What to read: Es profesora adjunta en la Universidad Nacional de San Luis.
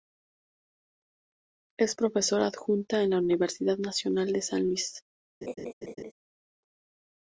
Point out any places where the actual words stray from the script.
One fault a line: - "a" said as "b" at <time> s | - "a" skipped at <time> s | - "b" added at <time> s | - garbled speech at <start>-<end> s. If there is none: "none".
none